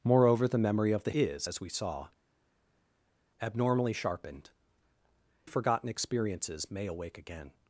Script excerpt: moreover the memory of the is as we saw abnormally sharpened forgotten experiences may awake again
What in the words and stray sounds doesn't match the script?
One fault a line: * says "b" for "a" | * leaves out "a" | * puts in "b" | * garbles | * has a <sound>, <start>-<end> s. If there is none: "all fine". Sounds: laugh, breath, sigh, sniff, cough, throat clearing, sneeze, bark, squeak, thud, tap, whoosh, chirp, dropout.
all fine